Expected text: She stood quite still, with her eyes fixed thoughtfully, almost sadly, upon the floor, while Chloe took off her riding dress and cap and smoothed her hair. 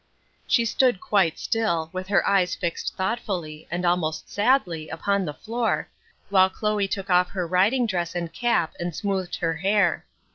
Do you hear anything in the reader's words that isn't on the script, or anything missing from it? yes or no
yes